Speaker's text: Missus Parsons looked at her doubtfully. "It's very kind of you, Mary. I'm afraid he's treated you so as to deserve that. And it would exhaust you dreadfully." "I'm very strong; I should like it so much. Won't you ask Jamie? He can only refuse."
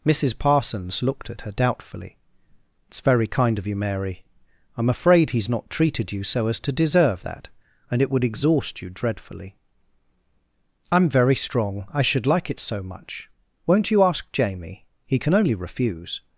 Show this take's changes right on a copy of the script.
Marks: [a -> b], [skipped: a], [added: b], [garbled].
Missus Parsons looked at her doubtfully. "It's very kind of you, Mary. I'm afraid he's [added: not] treated you so as to deserve that. And it would exhaust you dreadfully." "I'm very strong; I should like it so much. Won't you ask Jamie? He can only refuse."